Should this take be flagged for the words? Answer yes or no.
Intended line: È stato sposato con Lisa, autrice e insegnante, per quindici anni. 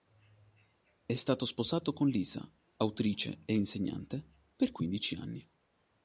no